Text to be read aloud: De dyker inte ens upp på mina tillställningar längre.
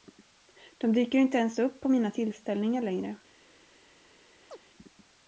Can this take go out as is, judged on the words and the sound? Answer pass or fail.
fail